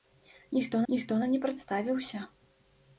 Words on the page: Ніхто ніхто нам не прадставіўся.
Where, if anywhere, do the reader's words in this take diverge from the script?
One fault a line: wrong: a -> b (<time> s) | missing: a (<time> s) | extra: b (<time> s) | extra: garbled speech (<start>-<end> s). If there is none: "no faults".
no faults